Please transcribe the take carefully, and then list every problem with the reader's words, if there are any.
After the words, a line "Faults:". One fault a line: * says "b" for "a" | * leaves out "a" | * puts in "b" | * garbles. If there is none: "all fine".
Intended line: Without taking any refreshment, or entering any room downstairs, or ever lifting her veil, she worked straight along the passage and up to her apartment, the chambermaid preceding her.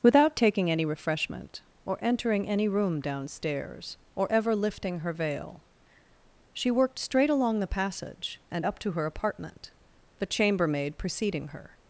Without taking any refreshment, or entering any room downstairs, or ever lifting her veil, she worked straight along the passage and up to her apartment, the chambermaid preceding her.
Faults:
all fine